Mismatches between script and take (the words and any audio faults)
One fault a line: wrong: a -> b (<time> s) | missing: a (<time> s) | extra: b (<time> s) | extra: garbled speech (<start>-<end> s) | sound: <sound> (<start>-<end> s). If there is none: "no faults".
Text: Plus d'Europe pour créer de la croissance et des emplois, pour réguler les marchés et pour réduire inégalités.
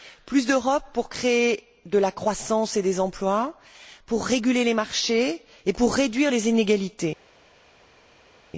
extra: les (6.3 s)